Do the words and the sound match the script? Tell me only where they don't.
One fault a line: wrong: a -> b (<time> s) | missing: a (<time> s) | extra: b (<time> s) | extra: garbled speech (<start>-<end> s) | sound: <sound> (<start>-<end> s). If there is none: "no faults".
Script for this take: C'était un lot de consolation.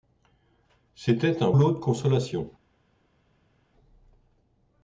no faults